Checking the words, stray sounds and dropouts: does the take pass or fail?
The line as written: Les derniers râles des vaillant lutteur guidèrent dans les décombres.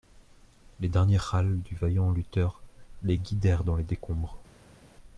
fail